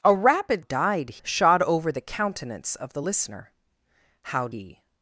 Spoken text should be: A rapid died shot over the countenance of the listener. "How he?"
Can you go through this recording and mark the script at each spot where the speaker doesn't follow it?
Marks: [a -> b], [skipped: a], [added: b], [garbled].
A rapid died shot over the countenance of the listener. "How he?"